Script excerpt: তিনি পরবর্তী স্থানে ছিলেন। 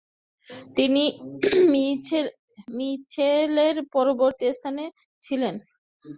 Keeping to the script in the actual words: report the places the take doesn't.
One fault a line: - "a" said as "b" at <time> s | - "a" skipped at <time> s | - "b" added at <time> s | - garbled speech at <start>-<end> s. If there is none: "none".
- "মিচেলের" added at 2.8 s